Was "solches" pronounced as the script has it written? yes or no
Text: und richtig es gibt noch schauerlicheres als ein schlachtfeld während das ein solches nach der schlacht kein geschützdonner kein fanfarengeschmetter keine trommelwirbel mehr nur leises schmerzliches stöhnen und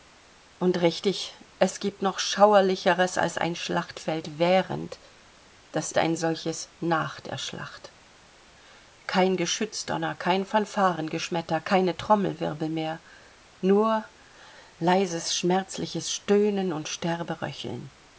yes